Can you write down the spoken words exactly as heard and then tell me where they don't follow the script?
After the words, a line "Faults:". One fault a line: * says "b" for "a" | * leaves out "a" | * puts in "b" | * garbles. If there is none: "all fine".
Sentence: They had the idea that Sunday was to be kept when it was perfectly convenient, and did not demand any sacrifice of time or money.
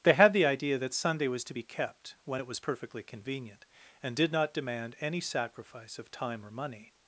They had the idea that Sunday was to be kept when it was perfectly convenient, and did not demand any sacrifice of time or money.
Faults:
all fine